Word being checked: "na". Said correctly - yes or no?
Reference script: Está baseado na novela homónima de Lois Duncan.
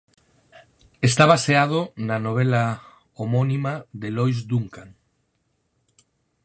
yes